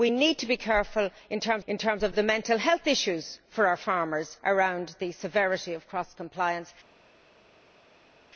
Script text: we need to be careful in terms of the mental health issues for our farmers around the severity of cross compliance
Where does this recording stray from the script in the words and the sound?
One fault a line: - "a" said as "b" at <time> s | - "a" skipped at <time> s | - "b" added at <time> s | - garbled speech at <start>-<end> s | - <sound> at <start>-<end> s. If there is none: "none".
- "in terms" added at 1.7 s